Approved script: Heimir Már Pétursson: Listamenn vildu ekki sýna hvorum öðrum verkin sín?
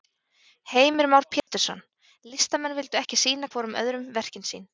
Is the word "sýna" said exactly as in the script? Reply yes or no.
yes